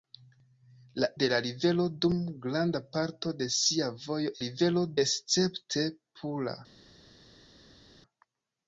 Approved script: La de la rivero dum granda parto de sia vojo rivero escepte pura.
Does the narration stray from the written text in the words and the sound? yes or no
no